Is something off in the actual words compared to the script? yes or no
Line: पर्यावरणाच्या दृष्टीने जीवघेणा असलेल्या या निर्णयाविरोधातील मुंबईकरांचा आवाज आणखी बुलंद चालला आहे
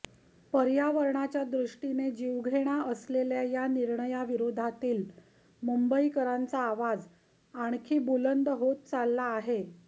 yes